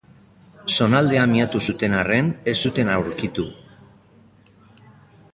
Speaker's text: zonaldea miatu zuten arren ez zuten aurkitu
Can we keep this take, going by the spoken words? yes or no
yes